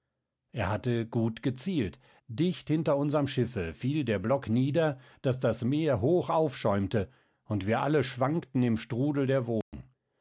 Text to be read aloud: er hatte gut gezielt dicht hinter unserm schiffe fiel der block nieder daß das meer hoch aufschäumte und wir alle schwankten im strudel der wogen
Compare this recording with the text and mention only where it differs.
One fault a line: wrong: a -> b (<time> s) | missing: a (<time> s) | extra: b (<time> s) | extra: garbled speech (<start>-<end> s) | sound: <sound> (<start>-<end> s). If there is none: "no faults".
sound: dropout (9.6-9.7 s)